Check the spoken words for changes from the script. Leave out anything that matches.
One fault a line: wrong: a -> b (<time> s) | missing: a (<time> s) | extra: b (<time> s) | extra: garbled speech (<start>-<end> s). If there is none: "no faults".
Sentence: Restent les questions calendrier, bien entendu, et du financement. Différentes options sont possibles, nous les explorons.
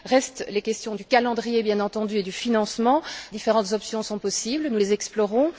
extra: du (0.9 s)